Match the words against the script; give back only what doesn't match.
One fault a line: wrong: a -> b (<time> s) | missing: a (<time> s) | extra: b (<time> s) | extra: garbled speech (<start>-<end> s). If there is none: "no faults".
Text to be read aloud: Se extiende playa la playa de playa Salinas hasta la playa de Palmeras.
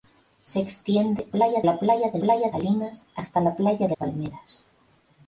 no faults